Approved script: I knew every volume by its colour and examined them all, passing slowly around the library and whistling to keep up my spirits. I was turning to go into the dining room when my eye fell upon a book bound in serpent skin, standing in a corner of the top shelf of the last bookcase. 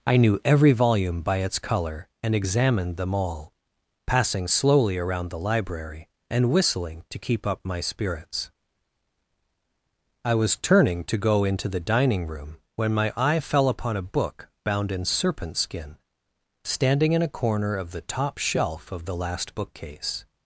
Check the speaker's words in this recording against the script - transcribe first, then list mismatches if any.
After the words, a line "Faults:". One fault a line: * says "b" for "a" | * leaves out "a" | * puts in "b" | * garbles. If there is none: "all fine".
I knew every volume by its colour and examined them all, passing slowly around the library and whistling to keep up my spirits. I was turning to go into the dining room when my eye fell upon a book bound in serpent skin, standing in a corner of the top shelf of the last bookcase.
Faults:
all fine